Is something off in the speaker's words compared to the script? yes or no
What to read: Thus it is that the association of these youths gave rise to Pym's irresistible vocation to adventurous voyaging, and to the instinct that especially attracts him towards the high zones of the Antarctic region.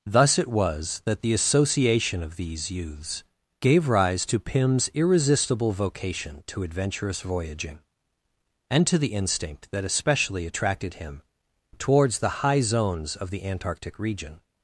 yes